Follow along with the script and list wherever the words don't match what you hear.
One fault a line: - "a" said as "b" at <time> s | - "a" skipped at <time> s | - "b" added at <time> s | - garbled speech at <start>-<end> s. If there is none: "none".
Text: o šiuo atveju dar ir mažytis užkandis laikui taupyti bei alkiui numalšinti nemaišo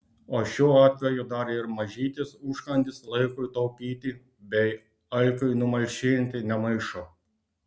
none